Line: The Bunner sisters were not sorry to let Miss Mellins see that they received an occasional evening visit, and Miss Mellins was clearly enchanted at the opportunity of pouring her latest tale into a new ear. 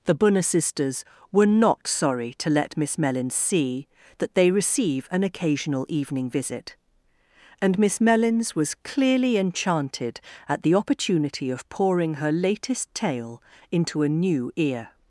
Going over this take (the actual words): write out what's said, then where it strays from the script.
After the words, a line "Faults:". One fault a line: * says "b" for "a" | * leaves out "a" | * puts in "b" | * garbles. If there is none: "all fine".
The Bunner sisters were not sorry to let Miss Mellins see that they receive an occasional evening visit, and Miss Mellins was clearly enchanted at the opportunity of pouring her latest tale into a new ear.
Faults:
* says "receive" for "received"